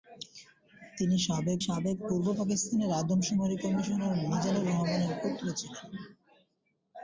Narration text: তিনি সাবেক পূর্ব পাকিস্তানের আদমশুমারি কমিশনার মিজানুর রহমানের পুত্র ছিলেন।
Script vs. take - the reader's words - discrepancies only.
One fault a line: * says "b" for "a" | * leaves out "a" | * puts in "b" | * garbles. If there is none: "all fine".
* puts in "সাবেক"